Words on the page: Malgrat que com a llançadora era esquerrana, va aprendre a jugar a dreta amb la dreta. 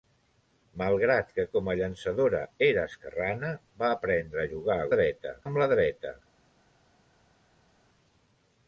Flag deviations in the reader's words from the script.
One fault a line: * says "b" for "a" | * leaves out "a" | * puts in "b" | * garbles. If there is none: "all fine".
all fine